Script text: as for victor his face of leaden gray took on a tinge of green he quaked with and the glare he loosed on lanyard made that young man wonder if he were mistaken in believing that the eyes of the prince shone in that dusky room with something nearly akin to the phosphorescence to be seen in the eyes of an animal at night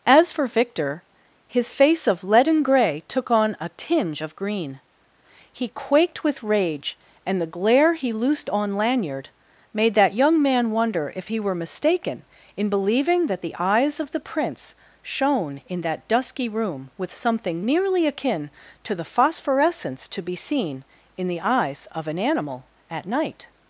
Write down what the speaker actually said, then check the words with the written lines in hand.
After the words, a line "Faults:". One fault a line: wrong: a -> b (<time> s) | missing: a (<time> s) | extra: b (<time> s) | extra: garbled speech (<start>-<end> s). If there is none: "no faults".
as for victor his face of leaden gray took on a tinge of green he quaked with rage and the glare he loosed on lanyard made that young man wonder if he were mistaken in believing that the eyes of the prince shone in that dusky room with something nearly akin to the phosphorescence to be seen in the eyes of an animal at night
Faults:
extra: rage (6.4 s)